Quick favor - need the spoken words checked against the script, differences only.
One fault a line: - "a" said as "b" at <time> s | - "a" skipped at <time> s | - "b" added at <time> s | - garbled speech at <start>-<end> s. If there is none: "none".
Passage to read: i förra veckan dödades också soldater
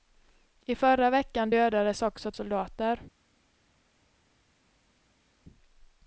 none